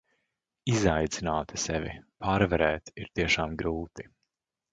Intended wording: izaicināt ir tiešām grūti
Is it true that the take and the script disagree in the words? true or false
true